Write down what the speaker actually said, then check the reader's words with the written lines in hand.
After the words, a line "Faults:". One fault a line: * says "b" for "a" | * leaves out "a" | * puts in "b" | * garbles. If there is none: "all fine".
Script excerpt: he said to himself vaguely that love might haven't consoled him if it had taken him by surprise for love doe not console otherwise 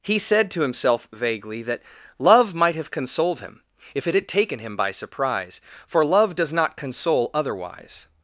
he said to himself vaguely that love might have consoled him if it had taken him by surprise for love does not console otherwise
Faults:
* says "have" for "haven't"
* says "does" for "doe"